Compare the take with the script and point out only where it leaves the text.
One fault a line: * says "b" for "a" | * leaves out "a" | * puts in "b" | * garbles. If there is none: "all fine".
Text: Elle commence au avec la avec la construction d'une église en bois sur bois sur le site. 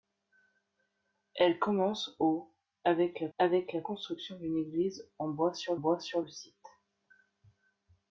all fine